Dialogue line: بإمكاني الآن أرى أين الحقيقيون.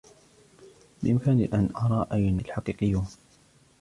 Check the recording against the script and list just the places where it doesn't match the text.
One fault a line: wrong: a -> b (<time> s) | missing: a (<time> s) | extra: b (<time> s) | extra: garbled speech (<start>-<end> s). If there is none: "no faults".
no faults